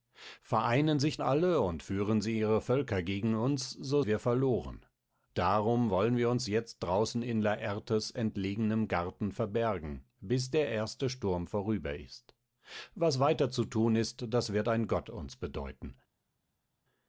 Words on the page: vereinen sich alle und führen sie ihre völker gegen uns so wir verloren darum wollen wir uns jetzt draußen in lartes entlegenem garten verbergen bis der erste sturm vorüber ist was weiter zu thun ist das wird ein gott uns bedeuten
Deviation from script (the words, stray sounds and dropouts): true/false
false